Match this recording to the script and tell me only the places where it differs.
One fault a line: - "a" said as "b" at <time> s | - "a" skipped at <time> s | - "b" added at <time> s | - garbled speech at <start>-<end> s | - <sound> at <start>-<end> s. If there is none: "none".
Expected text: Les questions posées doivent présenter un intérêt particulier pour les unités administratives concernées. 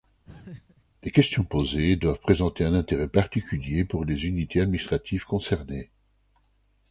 - laugh at 0.2-0.8 s